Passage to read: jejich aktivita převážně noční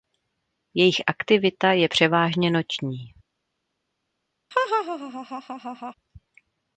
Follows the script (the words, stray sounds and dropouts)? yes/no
no